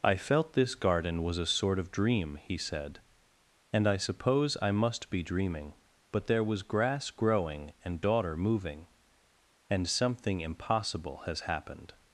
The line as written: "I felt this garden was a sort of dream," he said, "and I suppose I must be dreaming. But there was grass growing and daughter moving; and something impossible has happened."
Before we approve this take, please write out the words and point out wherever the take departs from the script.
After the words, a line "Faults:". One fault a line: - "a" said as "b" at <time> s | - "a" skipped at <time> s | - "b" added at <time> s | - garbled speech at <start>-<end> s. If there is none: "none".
"I felt this garden was a sort of dream," he said, "and I suppose I must be dreaming. But there was grass growing and daughter moving; and something impossible has happened."
Faults:
none